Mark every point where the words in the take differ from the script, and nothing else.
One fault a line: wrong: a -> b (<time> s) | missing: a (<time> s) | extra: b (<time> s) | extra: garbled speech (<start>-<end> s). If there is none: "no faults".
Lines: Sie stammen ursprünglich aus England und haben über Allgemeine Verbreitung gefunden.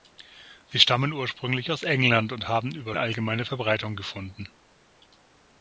no faults